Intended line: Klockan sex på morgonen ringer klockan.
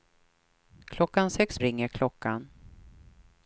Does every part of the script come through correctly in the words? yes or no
no